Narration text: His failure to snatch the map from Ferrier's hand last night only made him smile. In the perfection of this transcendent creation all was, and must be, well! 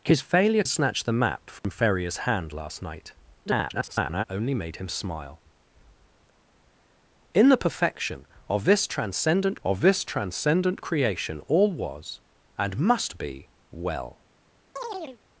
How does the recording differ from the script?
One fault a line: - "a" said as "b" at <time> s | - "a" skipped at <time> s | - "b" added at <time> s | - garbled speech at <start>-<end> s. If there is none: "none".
- "to" skipped at 0.6 s
- garbled speech at 3.5-4.2 s
- "of this transcendent" added at 9.6 s